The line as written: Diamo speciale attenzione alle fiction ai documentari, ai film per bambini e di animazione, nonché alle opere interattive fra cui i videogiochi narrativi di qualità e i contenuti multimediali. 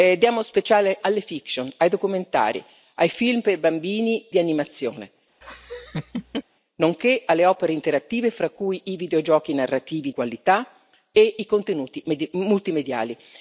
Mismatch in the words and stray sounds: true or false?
true